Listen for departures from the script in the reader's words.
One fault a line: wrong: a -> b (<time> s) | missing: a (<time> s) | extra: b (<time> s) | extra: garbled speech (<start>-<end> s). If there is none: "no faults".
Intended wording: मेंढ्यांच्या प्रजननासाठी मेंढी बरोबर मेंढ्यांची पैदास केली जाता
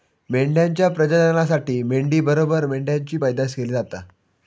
no faults